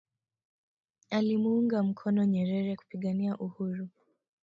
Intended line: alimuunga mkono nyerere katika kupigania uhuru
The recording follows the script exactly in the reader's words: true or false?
false